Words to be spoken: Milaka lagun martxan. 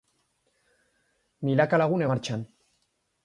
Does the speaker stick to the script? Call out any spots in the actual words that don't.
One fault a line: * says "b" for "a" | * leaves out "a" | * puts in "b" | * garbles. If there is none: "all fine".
all fine